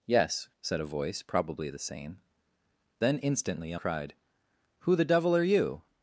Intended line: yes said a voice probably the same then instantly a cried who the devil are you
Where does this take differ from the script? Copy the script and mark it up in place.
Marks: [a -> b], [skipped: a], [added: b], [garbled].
yes said a voice probably the same then instantly a cried who the devil are you